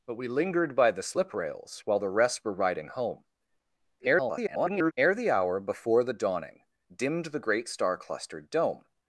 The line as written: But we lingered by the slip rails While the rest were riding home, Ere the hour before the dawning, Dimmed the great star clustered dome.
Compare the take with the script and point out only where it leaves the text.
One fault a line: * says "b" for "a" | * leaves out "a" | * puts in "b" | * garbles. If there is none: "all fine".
* garbles